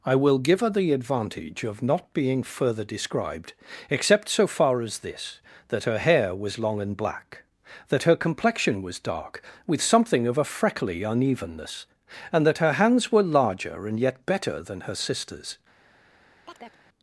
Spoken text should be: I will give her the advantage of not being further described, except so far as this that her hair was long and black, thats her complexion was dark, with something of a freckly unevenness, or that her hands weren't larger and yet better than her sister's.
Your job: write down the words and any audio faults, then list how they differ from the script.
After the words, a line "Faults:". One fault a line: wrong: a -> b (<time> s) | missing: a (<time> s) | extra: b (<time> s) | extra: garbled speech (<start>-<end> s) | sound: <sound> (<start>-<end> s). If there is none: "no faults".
I will give her the advantage of not being further described, except so far as this that her hair was long and black, that her complexion was dark, with something of a freckly unevenness, and that her hands were larger and yet better than her sister's.
Faults:
wrong: thats -> that (7.9 s)
wrong: or -> and (12.3 s)
wrong: weren't -> were (13.1 s)
sound: chirp (16.4-16.8 s)